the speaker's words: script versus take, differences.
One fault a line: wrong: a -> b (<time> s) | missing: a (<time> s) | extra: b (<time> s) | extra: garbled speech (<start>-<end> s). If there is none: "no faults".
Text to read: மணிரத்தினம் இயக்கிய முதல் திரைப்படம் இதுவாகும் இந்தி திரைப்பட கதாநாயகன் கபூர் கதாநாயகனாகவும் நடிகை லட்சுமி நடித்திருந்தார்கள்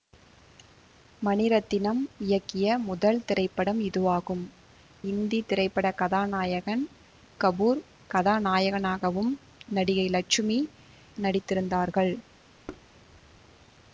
no faults